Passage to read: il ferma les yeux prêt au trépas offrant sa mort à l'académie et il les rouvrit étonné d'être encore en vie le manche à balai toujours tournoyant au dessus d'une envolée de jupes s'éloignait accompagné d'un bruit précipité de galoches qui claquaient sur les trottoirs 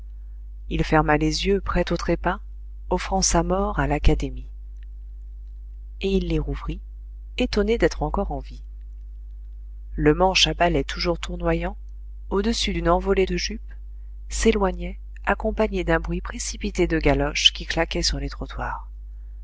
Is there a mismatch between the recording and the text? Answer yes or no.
no